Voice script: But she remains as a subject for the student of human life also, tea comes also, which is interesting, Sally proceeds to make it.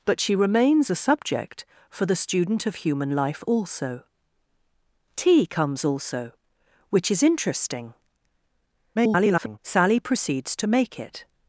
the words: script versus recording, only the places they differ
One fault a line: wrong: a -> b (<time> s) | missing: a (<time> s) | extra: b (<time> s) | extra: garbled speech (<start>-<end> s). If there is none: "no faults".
missing: as (0.9 s)
extra: garbled speech (9.0-9.6 s)